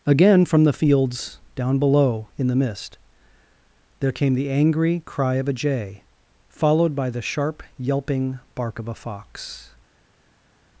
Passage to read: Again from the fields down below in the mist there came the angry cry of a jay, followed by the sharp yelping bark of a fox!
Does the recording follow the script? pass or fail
pass